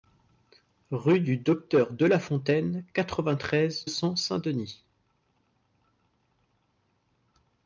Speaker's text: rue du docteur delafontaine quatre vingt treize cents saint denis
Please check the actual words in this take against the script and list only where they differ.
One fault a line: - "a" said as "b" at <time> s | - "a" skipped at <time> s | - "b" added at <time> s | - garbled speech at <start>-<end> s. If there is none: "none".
none